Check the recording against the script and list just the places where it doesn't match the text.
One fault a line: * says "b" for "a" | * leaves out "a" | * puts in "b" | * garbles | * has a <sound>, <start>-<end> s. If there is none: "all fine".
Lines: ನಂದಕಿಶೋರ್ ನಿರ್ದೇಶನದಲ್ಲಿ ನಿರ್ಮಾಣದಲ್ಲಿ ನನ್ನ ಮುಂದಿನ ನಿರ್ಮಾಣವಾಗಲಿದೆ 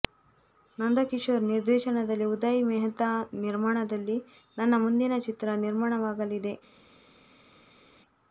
* puts in "ಉದಯ್ ಮೆಹ್ತಾ"
* puts in "ಚಿತ್ರ"